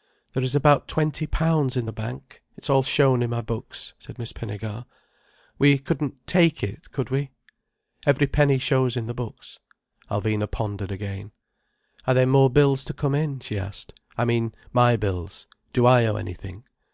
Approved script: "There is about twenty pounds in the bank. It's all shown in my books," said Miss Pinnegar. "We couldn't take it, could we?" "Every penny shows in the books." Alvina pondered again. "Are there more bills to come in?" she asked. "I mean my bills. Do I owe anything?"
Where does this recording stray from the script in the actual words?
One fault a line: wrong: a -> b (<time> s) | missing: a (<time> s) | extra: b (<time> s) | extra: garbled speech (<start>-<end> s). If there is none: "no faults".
no faults